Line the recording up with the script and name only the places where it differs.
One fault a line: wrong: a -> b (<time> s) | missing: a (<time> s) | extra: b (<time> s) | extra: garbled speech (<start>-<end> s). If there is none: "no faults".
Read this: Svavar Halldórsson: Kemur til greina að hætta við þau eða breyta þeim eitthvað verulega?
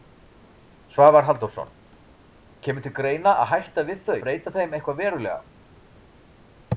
missing: eða (4.2 s)